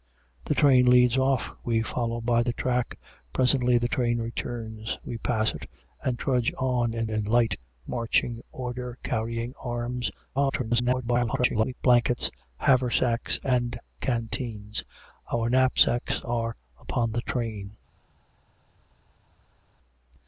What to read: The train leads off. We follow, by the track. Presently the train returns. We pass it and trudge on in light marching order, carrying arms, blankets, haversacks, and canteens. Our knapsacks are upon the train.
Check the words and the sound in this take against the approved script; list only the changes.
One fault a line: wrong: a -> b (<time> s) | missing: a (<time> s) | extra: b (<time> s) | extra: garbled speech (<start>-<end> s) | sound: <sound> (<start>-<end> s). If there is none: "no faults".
extra: in (7.1 s)
extra: garbled speech (10.3-11.7 s)